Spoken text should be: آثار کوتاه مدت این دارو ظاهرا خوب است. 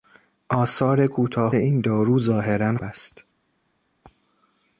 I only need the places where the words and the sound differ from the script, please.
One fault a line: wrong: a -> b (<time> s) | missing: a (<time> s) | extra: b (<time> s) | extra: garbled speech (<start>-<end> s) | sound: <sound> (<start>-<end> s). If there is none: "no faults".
missing: مدت (1.6 s)
missing: خوب (2.8 s)